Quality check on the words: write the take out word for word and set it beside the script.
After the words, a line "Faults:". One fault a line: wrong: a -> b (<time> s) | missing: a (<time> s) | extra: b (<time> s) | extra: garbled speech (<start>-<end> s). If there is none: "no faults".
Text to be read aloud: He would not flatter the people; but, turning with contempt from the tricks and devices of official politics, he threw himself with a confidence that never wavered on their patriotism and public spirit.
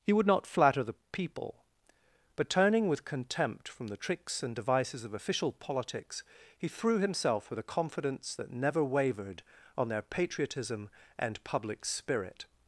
He would not flatter the people; but, turning with contempt from the tricks and devices of official politics, he threw himself with a confidence that never wavered on their patriotism and public spirit.
Faults:
no faults